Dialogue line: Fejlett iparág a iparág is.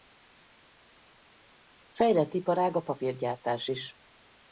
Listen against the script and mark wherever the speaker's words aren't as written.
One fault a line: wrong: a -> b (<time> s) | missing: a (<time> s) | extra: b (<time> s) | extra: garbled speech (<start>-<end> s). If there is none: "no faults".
wrong: iparág -> papírgyártás (2.8 s)